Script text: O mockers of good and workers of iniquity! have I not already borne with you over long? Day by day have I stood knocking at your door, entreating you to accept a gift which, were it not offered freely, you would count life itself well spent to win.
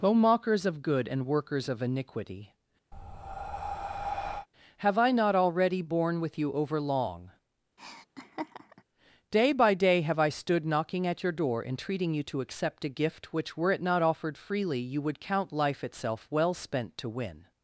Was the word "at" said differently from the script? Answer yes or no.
no